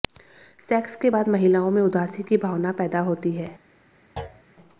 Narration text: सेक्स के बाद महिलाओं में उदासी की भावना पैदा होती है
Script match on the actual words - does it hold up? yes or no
yes